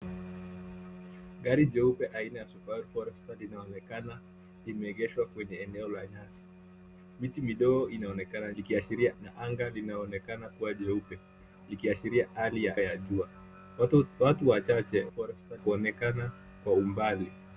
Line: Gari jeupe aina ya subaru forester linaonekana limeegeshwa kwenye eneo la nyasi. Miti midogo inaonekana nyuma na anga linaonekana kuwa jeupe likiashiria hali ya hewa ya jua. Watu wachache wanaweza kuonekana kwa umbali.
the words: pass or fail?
fail